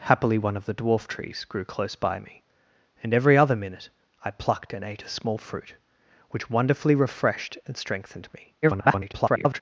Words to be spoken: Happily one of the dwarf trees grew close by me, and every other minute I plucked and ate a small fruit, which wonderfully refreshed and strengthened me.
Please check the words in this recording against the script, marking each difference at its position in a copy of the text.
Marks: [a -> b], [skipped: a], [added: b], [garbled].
Happily one of the dwarf trees grew close by me, and every other minute I plucked and ate a small fruit, which wonderfully refreshed and strengthened me. [garbled]